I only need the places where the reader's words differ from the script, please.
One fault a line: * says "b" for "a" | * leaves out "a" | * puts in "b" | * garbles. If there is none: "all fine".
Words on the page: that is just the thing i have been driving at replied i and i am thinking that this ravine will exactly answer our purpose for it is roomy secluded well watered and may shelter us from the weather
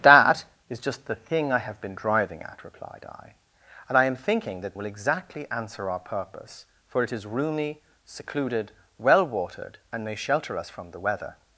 * leaves out "this ravine"